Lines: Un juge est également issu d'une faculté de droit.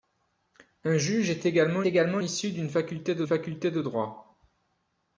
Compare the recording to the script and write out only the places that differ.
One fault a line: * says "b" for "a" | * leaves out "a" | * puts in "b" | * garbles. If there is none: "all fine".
* puts in "également"
* puts in "faculté de"